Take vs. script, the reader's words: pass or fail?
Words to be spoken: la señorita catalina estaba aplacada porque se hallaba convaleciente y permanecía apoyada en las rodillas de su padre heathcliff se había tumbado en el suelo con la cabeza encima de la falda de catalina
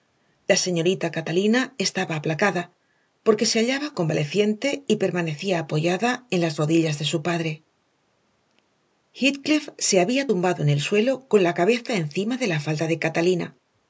pass